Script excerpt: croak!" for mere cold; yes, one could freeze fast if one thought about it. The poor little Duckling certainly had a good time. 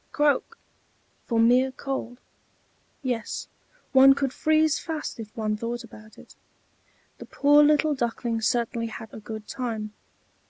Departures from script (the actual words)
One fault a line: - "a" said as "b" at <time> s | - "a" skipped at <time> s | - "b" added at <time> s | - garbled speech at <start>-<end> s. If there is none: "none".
none